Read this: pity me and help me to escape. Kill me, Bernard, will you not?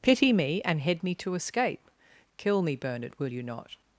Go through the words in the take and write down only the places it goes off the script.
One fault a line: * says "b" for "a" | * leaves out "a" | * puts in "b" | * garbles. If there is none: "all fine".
* says "head" for "help"